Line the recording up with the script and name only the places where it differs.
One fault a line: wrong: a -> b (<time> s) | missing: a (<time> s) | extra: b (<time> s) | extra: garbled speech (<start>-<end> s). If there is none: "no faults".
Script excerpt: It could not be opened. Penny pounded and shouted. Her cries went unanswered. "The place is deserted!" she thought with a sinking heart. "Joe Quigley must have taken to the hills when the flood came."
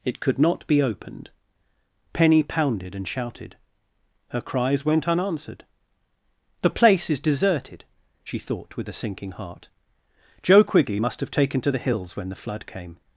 no faults